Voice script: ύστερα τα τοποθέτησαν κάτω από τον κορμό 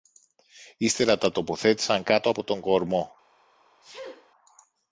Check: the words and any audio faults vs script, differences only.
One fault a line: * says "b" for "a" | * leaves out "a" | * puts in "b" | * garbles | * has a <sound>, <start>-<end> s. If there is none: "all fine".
* has a sneeze, 3.8-4.3 s